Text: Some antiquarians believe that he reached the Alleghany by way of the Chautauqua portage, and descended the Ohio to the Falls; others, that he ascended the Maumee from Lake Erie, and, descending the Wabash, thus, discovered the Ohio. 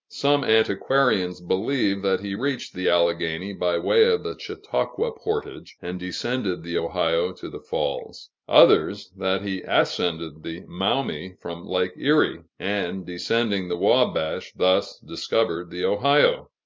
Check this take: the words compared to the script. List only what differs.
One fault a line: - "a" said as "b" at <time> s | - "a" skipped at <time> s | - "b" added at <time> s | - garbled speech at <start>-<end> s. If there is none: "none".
none